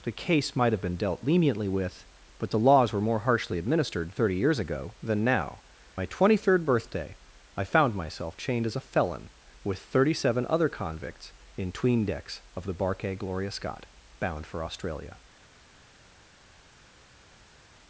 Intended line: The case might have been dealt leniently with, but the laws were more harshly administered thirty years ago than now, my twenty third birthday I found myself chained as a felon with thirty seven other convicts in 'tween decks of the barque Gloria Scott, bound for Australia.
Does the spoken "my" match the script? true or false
true